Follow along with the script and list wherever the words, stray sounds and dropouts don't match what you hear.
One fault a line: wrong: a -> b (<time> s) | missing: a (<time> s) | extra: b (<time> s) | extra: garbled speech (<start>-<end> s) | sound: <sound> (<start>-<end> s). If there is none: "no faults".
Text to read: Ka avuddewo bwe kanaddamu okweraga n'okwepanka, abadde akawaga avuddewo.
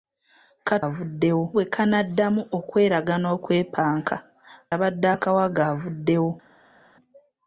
no faults